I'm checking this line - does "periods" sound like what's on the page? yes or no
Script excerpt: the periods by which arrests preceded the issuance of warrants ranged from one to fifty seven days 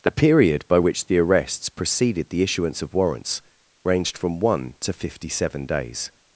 no